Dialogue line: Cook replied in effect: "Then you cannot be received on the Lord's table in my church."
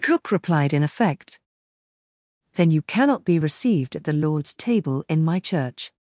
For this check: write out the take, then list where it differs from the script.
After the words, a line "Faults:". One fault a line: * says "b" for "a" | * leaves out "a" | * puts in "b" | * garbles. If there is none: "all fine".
Cook replied in effect: "Then you cannot be received at the Lord's table in my church."
Faults:
* says "at" for "on"